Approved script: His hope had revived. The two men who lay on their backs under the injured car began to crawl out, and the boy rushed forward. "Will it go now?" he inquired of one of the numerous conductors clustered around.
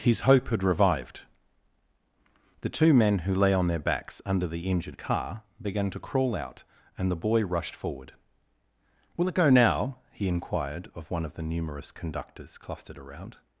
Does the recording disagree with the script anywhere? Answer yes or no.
no